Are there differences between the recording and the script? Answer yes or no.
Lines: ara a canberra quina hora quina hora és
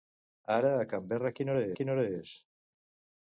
no